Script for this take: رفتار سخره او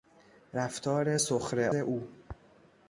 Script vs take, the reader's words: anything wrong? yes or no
no